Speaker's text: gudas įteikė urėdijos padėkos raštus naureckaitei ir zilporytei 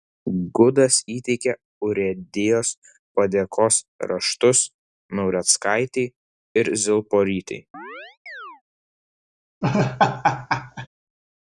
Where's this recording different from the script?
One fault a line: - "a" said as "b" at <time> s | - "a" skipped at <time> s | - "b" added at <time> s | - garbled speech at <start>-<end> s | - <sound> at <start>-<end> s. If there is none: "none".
- chirp at 7.7-8.6 s
- laugh at 9.6-10.9 s